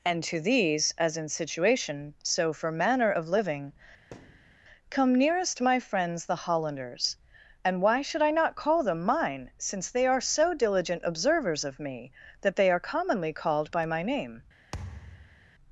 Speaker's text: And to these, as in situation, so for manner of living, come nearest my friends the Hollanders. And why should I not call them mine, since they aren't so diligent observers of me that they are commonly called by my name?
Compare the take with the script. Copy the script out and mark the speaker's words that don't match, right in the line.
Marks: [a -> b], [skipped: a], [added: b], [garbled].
And to these, as in situation, so for manner of living, come nearest my friends the Hollanders. And why should I not call them mine, since they [aren't -> are] so diligent observers of me that they are commonly called by my name?